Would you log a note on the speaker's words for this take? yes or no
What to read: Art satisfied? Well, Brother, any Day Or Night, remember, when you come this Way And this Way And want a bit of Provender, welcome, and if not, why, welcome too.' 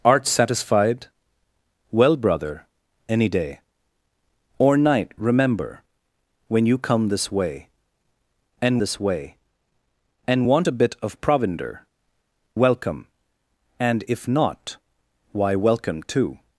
no